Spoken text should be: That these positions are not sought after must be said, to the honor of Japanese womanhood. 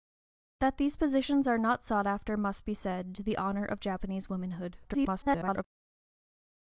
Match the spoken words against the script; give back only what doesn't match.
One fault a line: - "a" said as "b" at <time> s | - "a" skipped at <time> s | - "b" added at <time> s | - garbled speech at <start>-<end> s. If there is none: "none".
- garbled speech at 4.8-5.6 s